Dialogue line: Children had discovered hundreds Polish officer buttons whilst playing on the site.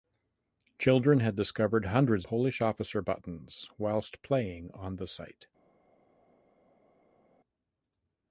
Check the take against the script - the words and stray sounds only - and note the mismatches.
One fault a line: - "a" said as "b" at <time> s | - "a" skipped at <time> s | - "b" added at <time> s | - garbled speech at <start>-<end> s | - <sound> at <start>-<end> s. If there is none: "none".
none